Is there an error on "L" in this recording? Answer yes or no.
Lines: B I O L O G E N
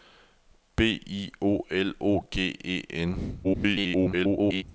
no